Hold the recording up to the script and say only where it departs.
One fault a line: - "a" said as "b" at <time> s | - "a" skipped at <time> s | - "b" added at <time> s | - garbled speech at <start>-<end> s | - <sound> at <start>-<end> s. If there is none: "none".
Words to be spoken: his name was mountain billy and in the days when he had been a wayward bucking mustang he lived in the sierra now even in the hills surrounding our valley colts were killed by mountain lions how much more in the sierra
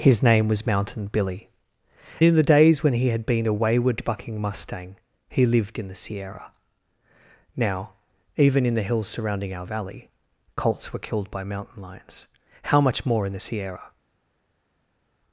- "and" skipped at 1.5 s